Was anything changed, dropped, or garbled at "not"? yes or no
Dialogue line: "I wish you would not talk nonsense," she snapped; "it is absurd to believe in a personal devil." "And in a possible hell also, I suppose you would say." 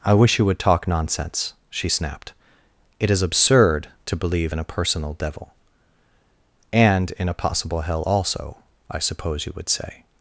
yes